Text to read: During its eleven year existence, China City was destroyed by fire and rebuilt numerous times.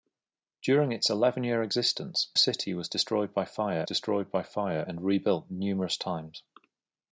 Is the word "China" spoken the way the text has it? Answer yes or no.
no